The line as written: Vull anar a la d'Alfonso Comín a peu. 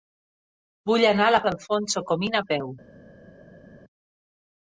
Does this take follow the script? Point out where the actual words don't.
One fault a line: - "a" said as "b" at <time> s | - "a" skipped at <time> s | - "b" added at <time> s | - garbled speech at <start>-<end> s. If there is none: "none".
none